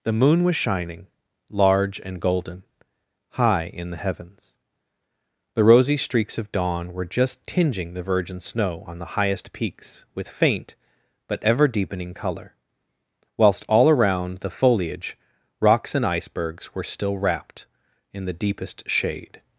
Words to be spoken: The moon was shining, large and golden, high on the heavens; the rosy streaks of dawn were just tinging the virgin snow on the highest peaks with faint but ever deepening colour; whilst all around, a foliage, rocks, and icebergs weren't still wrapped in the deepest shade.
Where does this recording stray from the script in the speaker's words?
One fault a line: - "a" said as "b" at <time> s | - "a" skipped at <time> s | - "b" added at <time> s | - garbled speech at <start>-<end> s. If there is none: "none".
- "on" said as "in" at 3.6 s
- "a" said as "the" at 14.4 s
- "weren't" said as "were" at 16.7 s